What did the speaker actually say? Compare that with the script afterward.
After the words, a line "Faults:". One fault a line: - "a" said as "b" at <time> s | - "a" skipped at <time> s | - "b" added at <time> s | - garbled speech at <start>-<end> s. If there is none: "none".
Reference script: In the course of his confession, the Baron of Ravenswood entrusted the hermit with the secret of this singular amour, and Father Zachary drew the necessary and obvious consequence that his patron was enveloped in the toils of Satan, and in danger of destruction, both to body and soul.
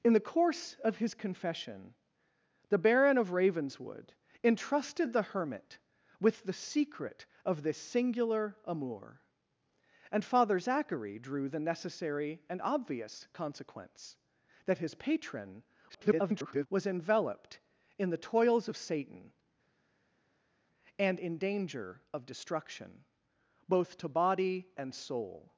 In the course of his confession, the Baron of Ravenswood entrusted the hermit with the secret of this singular amour, and Father Zachary drew the necessary and obvious consequence that his patron [garbled] was enveloped in the toils of Satan, and in danger of destruction, both to body and soul.
Faults:
- garbled speech at 15.9-16.7 s